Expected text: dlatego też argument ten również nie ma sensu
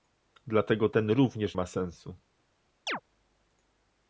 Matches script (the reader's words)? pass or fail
fail